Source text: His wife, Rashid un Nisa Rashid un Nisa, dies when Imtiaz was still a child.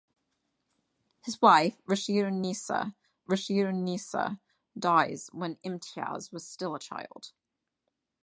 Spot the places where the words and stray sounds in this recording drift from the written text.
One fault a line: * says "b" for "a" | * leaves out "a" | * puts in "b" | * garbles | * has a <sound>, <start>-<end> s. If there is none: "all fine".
all fine